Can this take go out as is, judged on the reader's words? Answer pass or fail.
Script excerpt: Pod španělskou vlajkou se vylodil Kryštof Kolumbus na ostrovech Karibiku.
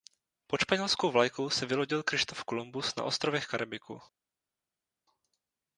pass